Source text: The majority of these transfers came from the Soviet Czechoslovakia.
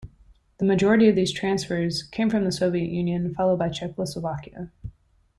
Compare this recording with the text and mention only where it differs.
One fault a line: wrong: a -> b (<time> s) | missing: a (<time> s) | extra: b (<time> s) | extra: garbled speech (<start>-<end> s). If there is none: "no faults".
extra: Union followed by (2.9 s)